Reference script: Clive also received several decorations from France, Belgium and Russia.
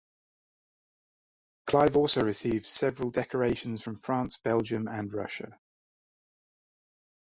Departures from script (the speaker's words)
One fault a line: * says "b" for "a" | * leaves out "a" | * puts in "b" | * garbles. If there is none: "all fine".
all fine